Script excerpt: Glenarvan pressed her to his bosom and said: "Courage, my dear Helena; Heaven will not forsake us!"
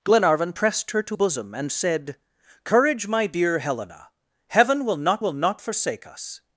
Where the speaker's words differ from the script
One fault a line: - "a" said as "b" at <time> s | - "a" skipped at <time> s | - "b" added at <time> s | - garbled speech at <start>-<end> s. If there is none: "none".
- "his" skipped at 1.2 s
- "will not" added at 5.2 s